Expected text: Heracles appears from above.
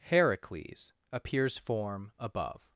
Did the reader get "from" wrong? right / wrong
wrong